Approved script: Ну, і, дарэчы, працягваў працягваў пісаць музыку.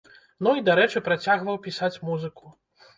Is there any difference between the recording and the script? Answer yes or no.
yes